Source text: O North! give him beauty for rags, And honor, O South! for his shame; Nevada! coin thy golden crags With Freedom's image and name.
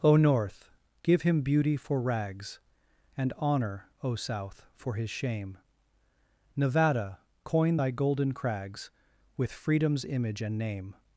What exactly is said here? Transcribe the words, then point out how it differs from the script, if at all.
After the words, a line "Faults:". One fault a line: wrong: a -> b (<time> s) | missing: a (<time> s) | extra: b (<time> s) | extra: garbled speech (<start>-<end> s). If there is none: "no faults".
O North! give him beauty for rags, And honor, O South! for his shame; Nevada! coin thy golden crags With Freedom's image and name.
Faults:
no faults